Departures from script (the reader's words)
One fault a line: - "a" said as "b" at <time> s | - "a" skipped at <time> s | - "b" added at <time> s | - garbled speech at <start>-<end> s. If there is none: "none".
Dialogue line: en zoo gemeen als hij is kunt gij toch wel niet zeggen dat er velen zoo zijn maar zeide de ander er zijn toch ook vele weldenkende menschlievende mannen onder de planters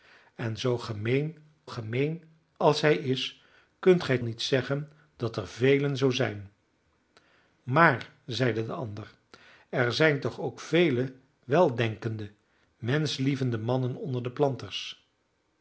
- "gemeen" added at 1.7 s
- "toch wel" skipped at 4.2 s